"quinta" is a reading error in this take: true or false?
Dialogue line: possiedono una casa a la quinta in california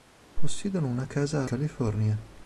true